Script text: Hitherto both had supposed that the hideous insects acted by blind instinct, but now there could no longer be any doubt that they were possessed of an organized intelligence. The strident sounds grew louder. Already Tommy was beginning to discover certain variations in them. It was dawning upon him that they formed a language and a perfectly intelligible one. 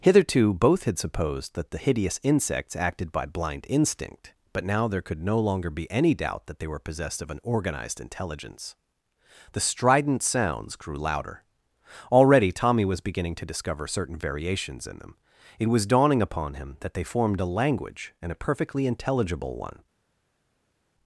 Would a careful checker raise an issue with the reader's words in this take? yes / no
no